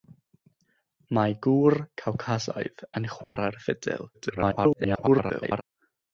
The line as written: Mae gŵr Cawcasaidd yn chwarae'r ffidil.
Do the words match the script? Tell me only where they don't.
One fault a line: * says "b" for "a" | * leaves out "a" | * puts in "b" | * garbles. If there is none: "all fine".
* garbles